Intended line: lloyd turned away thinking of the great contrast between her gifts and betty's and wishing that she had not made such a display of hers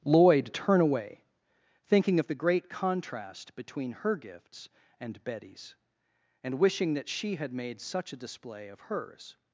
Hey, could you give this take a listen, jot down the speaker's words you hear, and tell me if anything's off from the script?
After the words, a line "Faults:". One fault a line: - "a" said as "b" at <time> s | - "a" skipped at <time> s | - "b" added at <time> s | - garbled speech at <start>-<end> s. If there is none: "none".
lloyd turn away thinking of the great contrast between her gifts and betty's and wishing that she had made such a display of hers
Faults:
- "turned" said as "turn" at 0.5 s
- "not" skipped at 7.5 s